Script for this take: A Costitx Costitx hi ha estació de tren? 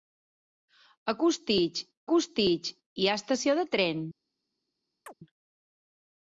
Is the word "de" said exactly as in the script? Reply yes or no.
yes